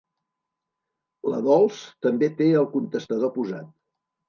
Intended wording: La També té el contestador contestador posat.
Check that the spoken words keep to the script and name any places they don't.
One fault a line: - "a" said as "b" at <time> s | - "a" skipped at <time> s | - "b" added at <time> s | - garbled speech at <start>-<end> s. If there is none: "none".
- "Dols" added at 1.5 s
- "contestador" skipped at 3.4 s